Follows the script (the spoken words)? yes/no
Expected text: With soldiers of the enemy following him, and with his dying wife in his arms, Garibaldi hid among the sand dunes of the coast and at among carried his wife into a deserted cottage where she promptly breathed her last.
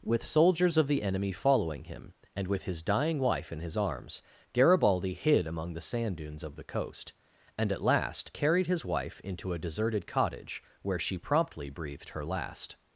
no